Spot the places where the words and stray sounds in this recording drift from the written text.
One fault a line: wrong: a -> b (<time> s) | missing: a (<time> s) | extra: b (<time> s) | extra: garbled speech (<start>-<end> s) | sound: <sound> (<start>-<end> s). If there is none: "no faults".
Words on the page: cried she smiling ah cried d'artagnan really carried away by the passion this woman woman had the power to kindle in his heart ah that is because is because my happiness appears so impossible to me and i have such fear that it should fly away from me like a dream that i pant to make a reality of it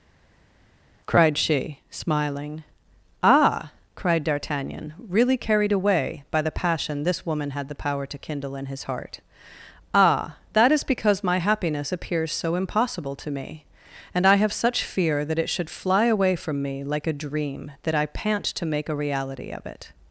missing: woman (7.5 s)
missing: is because (11.2 s)